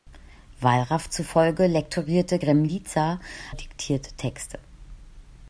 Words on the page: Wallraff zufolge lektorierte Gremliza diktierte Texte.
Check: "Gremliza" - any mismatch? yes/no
no